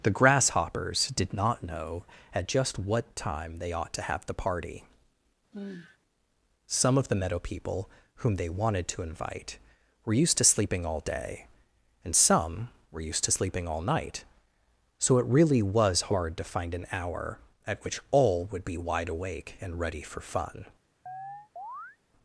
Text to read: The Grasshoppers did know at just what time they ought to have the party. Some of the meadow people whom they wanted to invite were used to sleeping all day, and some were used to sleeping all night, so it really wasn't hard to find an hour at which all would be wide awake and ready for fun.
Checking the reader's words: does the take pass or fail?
fail